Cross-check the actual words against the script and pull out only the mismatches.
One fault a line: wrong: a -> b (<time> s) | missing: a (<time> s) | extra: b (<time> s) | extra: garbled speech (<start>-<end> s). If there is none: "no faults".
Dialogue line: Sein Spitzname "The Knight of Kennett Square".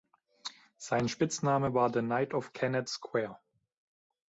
extra: war (1.7 s)